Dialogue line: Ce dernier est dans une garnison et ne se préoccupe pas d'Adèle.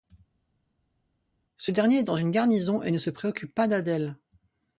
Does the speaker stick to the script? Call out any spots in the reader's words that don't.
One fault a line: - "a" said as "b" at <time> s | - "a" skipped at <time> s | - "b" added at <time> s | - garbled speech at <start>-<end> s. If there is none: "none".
none